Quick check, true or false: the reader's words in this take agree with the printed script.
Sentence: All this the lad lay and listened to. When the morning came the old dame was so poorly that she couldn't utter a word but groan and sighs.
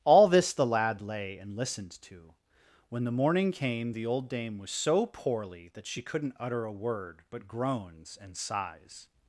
false